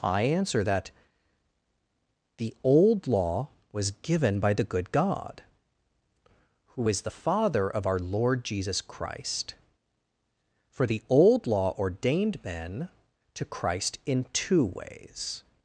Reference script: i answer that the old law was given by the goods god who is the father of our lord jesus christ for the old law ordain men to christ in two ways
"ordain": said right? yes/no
no